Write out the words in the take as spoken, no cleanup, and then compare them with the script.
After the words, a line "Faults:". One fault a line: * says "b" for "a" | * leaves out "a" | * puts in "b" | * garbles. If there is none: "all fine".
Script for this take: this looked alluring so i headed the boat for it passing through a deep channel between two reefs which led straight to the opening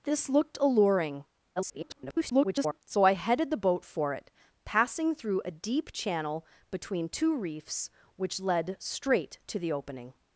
this looked alluring [garbled] so i headed the boat for it passing through a deep channel between two reefs which led straight to the opening
Faults:
* garbles